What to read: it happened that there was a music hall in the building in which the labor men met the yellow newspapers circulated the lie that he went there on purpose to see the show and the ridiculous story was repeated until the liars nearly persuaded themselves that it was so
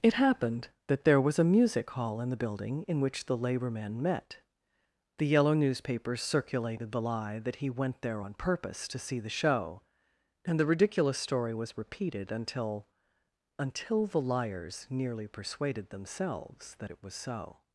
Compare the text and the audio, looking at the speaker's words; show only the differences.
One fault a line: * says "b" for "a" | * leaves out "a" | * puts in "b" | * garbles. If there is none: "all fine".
* puts in "until"